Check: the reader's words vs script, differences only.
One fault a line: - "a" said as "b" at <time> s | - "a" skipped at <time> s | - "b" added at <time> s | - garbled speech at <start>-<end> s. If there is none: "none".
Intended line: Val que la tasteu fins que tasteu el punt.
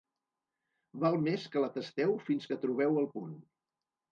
- "més" added at 1.3 s
- "tasteu" said as "trobeu" at 2.7 s